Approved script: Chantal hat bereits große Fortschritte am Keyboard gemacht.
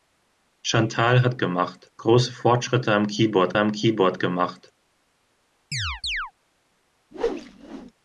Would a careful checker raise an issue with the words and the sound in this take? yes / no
yes